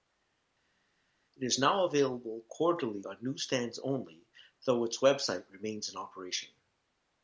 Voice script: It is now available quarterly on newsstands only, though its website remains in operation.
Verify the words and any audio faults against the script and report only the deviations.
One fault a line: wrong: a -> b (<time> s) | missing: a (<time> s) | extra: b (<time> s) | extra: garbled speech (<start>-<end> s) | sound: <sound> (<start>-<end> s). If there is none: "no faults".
no faults